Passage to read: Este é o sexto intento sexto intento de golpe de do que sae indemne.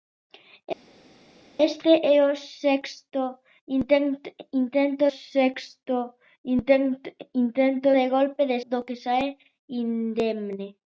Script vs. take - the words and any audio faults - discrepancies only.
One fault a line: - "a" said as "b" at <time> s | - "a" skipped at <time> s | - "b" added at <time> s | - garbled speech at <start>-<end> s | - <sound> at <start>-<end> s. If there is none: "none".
none